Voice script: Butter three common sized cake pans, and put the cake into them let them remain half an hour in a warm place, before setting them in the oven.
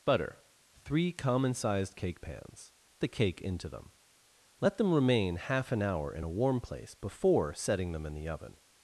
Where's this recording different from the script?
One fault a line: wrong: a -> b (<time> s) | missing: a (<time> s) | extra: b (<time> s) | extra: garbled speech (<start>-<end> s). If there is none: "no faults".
missing: and put (2.7 s)